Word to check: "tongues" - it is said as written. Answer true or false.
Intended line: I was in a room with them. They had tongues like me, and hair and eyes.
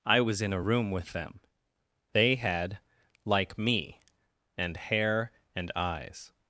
false